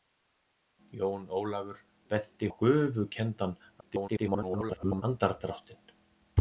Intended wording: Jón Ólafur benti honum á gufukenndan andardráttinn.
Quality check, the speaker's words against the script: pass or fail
fail